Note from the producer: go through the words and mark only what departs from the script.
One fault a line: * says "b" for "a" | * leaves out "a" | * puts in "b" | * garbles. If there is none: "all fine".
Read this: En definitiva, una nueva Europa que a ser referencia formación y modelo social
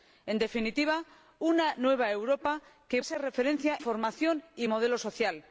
all fine